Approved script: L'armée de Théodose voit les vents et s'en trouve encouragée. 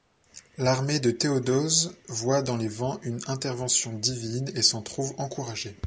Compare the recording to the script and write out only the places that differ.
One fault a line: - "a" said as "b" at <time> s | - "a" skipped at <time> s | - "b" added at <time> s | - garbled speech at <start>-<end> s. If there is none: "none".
- "dans" added at 2.4 s
- "une intervention divine" added at 3.0 s